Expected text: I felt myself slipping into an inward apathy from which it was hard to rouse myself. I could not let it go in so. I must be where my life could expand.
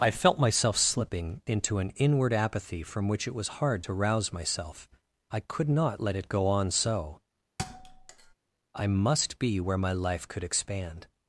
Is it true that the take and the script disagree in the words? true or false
true